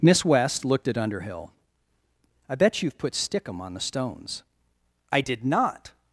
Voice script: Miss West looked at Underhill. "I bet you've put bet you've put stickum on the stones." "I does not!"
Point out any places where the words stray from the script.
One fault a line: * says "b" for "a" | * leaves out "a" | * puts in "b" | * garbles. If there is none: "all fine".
* leaves out "bet you've put"
* says "did" for "does"